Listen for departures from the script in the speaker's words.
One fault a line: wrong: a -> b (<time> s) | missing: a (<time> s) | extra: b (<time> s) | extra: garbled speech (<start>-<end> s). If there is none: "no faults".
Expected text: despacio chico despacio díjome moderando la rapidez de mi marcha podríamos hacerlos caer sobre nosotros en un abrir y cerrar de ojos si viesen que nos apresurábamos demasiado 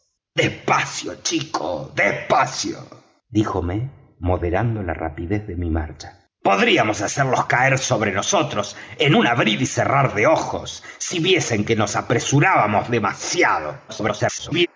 extra: garbled speech (13.9-14.7 s)